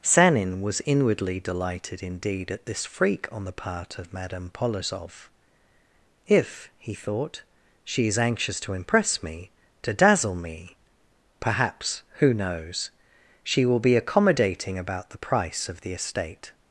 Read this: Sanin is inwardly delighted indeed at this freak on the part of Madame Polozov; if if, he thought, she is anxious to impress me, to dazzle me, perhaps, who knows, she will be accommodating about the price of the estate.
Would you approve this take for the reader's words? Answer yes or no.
no